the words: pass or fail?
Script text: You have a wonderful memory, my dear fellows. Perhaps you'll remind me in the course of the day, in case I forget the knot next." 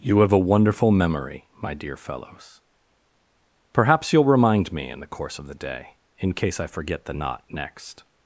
pass